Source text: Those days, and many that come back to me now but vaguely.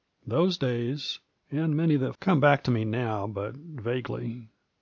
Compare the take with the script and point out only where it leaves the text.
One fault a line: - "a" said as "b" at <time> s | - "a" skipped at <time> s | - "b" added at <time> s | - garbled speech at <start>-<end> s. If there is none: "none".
none